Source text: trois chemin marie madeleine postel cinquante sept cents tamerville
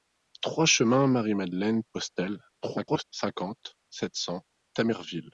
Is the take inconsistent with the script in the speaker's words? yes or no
yes